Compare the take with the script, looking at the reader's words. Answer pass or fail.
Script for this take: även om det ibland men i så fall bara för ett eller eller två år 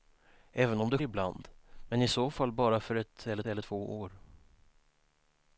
pass